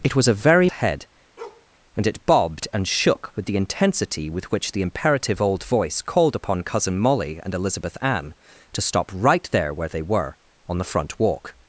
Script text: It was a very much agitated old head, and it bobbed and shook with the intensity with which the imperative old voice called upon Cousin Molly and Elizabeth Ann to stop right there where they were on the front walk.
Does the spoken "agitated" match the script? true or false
false